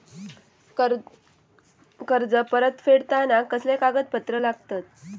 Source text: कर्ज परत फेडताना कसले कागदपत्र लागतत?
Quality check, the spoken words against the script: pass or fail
pass